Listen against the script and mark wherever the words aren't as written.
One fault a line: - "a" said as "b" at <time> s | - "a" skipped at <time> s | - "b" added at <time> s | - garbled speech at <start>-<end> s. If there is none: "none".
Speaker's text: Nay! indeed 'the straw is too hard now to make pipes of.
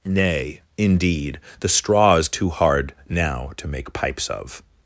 none